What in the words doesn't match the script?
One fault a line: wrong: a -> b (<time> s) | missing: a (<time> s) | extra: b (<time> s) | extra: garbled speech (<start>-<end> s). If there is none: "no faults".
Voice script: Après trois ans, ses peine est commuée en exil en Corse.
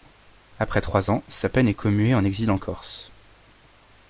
wrong: ses -> sa (1.3 s)